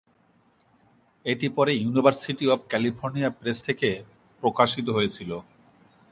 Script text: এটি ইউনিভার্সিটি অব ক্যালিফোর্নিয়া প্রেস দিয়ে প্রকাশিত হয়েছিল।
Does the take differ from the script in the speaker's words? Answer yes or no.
yes